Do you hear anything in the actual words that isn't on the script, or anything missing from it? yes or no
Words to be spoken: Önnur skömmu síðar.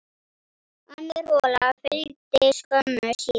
yes